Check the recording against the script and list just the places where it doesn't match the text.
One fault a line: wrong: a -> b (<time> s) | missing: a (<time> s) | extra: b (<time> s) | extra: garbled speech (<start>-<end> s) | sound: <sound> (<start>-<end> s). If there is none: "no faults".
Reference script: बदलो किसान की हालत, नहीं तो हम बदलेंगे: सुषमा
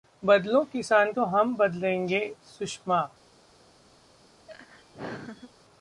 missing: की हालत नहीं (1.1 s)
sound: laugh (4.5-5.5 s)